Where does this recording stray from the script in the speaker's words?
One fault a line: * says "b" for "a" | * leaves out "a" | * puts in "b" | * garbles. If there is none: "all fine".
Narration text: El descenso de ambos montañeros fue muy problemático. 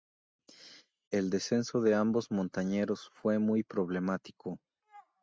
all fine